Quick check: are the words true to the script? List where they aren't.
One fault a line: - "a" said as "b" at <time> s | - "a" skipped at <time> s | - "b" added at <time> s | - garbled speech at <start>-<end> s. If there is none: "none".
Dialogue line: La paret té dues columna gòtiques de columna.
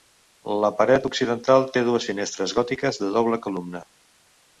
- "occidental" added at 1.1 s
- "columna" said as "finestres" at 2.1 s
- "doble" added at 3.2 s